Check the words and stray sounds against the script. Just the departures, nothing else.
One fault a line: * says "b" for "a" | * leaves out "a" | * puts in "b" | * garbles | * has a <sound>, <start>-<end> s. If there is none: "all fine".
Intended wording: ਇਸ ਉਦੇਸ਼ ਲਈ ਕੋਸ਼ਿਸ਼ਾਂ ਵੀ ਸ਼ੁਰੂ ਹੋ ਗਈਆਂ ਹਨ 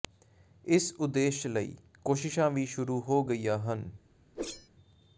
* has a whoosh, 4.3-4.7 s